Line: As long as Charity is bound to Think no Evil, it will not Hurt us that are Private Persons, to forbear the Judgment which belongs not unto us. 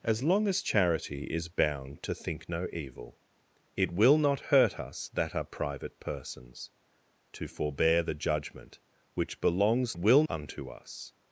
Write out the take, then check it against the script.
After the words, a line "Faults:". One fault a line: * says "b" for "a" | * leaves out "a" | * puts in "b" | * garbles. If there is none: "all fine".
As long as Charity is bound to Think no Evil, it will not Hurt us that are Private Persons, to forbear the Judgment which belongs will unto us.
Faults:
* says "will" for "not"